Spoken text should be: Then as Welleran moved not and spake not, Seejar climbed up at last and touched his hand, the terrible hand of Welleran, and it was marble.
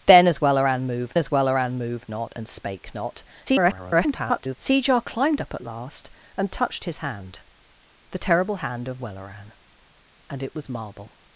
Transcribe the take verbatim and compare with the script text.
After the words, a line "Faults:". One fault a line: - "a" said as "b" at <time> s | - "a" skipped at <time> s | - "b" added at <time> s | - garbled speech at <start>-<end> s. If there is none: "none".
Then as Welleran moved as Welleran moved not and spake not, [garbled] Seejar climbed up at last and touched his hand, the terrible hand of Welleran, and it was marble.
Faults:
- "as Welleran moved" added at 1.2 s
- garbled speech at 3.4-4.6 s